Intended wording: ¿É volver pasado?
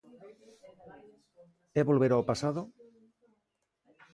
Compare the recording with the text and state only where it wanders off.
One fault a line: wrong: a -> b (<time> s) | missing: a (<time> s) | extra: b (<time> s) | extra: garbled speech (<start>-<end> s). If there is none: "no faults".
extra: ao (2.1 s)